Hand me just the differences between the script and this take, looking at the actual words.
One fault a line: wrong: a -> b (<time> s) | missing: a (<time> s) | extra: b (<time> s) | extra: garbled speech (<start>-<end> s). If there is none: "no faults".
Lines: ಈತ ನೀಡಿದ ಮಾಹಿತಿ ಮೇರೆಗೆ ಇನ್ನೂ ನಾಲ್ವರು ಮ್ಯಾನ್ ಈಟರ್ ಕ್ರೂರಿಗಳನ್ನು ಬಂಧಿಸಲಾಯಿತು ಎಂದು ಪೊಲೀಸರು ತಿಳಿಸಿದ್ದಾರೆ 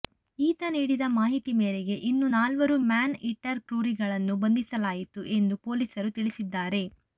no faults